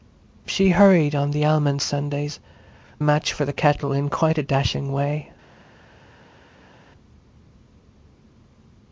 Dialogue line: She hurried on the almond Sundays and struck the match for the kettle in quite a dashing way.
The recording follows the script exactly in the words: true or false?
false